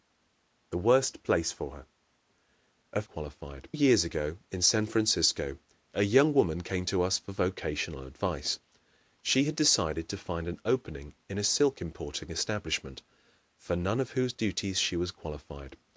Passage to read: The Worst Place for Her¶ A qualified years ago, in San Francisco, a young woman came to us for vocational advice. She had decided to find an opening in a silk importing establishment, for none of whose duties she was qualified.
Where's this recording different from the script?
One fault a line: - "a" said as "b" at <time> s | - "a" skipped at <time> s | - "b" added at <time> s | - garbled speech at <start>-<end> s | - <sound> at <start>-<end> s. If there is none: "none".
none